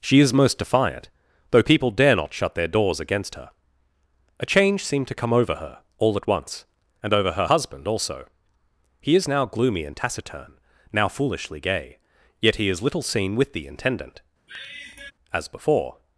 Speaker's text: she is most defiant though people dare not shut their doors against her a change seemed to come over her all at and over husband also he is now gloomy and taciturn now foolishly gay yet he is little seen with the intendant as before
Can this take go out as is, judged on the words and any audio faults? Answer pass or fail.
fail